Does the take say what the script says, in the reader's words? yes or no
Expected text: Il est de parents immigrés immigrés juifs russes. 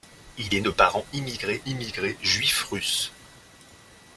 yes